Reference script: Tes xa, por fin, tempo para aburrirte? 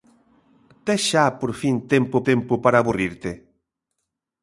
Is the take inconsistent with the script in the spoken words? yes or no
yes